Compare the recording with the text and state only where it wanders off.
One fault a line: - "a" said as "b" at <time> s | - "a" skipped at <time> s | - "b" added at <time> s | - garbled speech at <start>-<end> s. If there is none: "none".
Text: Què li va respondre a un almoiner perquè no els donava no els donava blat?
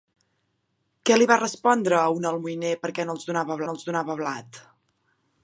none